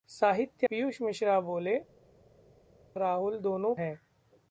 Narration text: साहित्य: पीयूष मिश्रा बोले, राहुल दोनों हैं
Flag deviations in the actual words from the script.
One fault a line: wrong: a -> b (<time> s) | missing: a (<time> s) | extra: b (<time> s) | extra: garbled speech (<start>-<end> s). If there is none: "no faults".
no faults